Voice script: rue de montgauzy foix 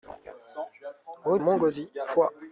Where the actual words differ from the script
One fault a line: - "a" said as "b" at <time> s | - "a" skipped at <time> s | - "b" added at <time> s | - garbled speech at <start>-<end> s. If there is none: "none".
- "de" skipped at 1.4 s